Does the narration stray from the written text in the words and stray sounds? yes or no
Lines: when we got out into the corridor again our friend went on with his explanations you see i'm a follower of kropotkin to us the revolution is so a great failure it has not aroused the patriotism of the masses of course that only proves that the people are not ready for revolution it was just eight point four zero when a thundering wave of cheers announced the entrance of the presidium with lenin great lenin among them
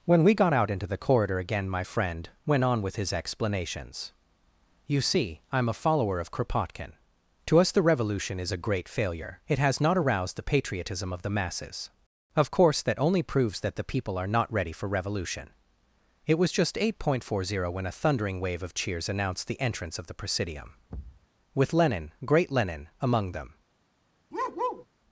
yes